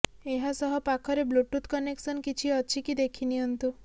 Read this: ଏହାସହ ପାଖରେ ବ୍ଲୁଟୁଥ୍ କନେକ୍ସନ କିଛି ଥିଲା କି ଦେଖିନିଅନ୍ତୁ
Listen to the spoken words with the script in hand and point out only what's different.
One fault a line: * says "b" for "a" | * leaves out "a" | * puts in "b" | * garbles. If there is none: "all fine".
* says "ଅଛି" for "ଥିଲା"